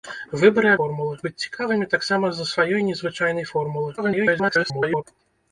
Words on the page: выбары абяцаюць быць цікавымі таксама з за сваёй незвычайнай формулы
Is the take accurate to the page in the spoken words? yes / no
no